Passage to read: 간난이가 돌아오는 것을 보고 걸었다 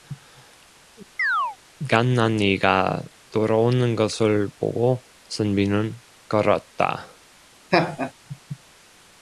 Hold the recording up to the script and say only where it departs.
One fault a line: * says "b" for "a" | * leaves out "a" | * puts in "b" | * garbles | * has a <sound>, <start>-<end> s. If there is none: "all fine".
* has a chirp, 1.2-1.6 s
* puts in "선비는"
* has a laugh, 7.7-8.1 s